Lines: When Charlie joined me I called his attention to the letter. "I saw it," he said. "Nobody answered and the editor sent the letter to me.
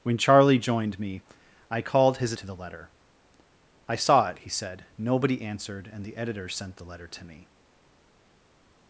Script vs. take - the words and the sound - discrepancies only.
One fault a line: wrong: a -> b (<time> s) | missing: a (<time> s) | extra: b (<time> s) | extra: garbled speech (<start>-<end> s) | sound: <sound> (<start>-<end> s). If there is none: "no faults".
missing: attention (2.3 s)